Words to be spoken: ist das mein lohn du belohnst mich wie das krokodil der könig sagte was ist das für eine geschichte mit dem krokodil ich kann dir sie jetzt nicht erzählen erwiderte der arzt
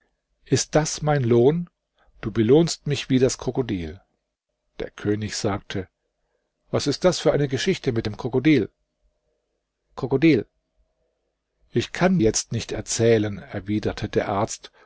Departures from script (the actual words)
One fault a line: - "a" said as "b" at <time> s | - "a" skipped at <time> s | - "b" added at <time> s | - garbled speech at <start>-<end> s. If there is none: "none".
- "krokodil" added at 10.0 s
- "dir sie" skipped at 12.2 s